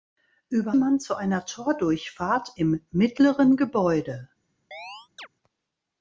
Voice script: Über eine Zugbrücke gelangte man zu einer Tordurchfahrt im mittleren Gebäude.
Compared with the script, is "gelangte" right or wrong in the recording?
wrong